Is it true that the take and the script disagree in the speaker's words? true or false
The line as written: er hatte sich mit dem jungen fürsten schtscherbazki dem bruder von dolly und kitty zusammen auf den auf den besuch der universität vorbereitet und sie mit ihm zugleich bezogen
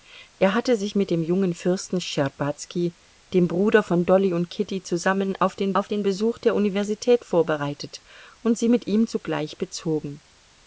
false